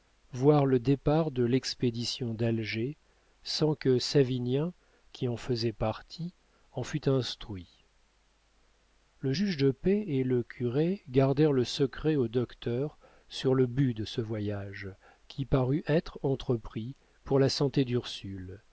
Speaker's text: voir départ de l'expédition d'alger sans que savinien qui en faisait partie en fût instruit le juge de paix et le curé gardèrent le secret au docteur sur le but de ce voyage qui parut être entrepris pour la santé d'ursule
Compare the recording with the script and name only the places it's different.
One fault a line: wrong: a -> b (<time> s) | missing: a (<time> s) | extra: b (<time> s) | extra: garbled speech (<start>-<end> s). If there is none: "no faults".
extra: le (0.7 s)